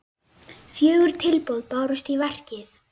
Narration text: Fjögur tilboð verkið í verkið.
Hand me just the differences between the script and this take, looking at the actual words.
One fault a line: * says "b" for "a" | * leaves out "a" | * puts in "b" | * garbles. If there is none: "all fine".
* says "bárust" for "verkið"